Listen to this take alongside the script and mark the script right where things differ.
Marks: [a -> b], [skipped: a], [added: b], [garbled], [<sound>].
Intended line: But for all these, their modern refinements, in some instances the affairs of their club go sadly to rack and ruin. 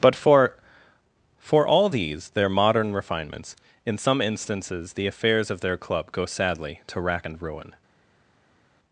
But for [added: for] all these, their modern refinements, in some instances the affairs of their club go sadly to rack and ruin.